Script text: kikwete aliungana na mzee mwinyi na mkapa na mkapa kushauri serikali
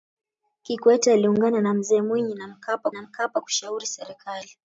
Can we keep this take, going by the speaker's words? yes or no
yes